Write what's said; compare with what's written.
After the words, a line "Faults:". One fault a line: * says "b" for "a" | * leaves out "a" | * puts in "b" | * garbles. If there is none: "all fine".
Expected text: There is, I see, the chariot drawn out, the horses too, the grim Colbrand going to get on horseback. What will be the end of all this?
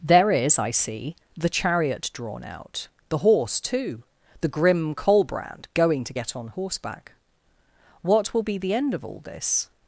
There is, I see, the chariot drawn out, the horse too, the grim Colbrand going to get on horseback. What will be the end of all this?
Faults:
* says "horse" for "horses"